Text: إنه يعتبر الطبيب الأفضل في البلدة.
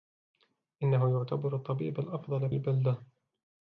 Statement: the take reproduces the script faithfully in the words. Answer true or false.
false